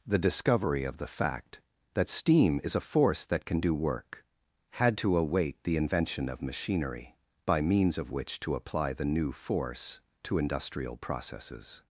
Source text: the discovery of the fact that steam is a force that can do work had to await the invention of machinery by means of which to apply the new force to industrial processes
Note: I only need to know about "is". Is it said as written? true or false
true